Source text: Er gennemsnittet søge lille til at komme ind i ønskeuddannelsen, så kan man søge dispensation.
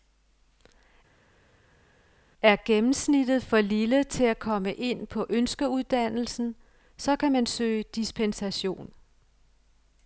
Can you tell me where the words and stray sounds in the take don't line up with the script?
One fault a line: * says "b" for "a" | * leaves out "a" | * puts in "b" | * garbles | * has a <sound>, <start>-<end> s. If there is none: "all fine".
* says "for" for "søge"
* says "på" for "i"